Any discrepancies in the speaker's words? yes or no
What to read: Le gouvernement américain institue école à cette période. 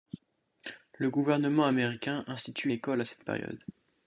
no